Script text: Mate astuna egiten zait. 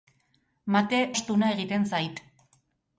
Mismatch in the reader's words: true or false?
false